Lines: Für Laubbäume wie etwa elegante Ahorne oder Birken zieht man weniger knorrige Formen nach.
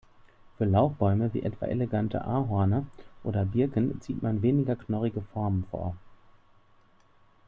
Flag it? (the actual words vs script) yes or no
yes